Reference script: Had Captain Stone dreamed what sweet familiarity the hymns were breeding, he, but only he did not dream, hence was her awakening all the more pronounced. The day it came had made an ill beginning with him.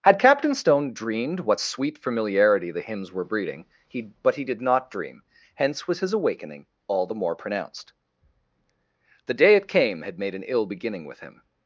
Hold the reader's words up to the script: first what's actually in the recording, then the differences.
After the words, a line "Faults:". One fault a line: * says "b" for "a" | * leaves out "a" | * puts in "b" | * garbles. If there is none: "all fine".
Had Captain Stone dreamed what sweet familiarity the hymns were breeding, he, but he did not dream, hence was his awakening all the more pronounced. The day it came had made an ill beginning with him.
Faults:
* leaves out "only"
* says "his" for "her"